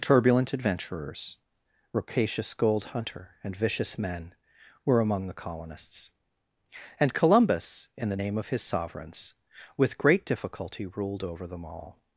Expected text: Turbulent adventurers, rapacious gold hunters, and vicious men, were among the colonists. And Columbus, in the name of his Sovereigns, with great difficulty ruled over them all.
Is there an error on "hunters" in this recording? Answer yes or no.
yes